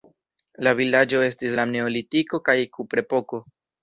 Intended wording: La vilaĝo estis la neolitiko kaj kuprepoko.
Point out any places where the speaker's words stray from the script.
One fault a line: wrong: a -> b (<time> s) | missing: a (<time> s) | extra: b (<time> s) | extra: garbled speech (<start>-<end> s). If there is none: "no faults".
no faults